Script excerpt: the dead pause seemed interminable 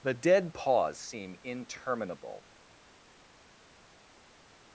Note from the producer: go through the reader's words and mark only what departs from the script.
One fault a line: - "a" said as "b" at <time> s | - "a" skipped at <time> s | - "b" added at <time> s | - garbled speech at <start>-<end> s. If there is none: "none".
- "seemed" said as "seem" at 1.0 s